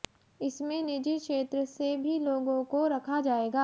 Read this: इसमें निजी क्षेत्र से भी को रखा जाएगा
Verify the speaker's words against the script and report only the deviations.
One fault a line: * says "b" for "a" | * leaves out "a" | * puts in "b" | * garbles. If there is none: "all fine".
* puts in "लोगों"